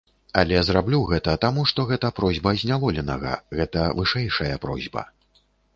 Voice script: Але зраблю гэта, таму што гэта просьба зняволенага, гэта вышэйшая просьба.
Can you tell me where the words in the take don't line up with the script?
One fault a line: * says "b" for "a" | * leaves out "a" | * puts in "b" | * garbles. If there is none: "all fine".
all fine